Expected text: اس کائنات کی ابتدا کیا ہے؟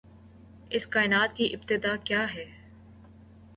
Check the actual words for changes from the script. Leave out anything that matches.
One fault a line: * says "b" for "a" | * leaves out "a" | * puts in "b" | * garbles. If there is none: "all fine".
all fine